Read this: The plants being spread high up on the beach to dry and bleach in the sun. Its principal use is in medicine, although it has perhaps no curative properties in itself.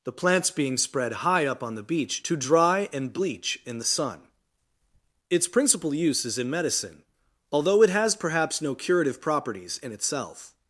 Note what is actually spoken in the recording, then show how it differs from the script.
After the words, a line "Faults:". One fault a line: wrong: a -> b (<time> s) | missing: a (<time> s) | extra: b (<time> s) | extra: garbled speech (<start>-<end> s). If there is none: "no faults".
The plants being spread high up on the beach to dry and bleach in the sun. Its principal use is in medicine, although it has perhaps no curative properties in itself.
Faults:
no faults